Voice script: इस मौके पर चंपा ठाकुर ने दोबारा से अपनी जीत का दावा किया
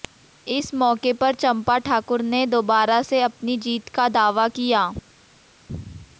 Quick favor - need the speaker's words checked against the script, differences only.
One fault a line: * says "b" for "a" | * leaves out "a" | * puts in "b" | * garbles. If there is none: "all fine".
all fine